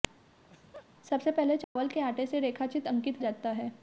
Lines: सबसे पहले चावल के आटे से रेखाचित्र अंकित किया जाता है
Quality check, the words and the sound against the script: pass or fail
fail